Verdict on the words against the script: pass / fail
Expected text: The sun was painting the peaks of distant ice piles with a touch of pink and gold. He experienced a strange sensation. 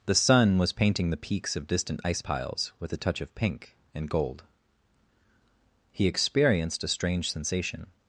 pass